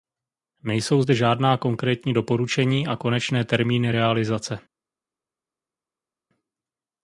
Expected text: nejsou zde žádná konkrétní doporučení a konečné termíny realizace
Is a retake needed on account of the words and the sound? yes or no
no